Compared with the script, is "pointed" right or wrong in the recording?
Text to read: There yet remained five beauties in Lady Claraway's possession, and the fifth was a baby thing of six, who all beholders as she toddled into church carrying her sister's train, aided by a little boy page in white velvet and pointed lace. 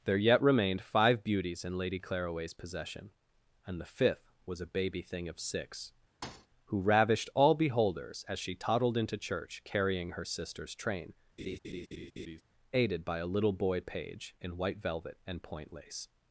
wrong